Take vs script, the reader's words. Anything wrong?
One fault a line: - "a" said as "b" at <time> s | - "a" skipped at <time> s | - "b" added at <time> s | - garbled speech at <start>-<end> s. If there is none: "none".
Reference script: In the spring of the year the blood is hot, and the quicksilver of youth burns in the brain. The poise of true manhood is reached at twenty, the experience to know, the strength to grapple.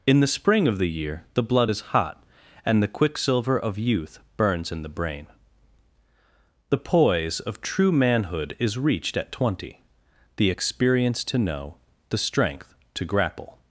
none